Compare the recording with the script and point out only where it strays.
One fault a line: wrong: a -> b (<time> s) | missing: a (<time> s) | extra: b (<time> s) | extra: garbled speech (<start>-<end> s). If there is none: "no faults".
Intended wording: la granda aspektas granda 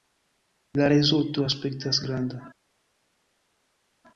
wrong: granda -> rezulto (0.9 s)